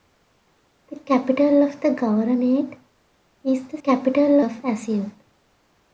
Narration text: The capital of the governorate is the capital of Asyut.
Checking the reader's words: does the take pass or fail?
pass